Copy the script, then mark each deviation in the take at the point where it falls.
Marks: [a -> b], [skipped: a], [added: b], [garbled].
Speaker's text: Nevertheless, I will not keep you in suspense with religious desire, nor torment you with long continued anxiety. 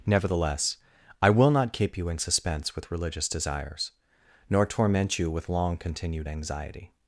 Nevertheless, I will not keep you in suspense with religious [desire, -> desires] nor torment you with long continued anxiety.